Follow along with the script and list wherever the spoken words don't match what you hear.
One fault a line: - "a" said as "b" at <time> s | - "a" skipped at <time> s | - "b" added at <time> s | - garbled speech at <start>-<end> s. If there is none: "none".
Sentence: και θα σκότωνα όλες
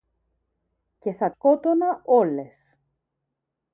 none